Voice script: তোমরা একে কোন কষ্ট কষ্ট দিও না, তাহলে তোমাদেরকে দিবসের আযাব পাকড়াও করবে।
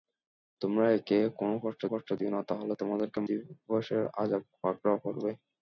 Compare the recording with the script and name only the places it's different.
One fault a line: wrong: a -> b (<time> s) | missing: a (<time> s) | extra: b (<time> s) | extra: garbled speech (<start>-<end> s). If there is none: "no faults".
no faults